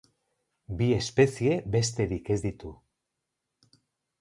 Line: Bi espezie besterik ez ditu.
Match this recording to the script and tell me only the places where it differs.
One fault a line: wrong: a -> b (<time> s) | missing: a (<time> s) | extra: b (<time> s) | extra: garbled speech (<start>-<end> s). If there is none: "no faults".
no faults